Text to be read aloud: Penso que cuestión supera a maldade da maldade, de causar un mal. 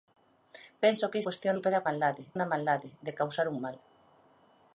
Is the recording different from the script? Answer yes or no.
no